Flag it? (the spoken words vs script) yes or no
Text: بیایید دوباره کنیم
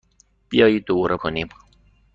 no